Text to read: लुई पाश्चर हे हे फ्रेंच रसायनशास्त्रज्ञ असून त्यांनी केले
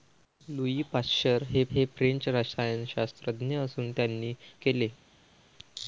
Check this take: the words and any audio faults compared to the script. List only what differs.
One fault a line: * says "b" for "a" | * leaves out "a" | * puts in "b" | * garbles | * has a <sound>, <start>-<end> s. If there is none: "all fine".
all fine